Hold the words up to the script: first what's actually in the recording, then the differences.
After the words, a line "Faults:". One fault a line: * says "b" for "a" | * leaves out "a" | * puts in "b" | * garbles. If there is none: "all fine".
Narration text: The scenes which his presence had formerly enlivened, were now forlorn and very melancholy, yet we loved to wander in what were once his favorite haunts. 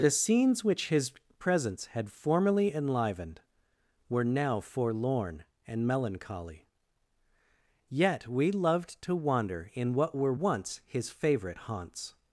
The scenes which his presence had formerly enlivened, were now forlorn and melancholy, yet we loved to wander in what were once his favorite haunts.
Faults:
* leaves out "very"